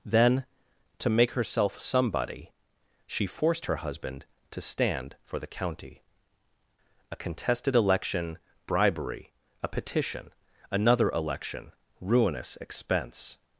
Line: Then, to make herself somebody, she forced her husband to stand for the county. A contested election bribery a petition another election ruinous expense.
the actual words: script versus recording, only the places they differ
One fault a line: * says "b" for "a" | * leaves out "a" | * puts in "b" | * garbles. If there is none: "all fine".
all fine